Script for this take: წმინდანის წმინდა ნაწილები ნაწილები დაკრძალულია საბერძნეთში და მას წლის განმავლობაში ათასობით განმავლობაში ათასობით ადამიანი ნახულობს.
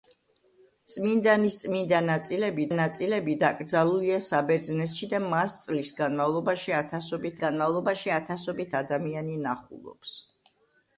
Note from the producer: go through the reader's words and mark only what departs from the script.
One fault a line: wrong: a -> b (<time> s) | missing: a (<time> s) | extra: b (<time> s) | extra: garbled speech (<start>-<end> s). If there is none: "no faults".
no faults